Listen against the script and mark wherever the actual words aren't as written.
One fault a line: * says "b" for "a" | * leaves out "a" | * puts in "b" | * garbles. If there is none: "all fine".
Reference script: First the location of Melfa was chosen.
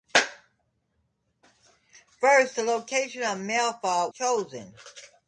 * leaves out "was"